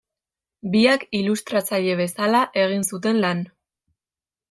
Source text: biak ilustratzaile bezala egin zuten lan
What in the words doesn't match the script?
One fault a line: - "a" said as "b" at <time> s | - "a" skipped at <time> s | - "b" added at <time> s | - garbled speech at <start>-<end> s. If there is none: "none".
none